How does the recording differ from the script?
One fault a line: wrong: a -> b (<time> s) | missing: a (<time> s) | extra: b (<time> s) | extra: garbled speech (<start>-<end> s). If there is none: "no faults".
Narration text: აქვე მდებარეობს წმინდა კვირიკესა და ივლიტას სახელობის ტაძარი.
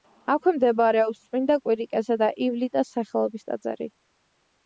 no faults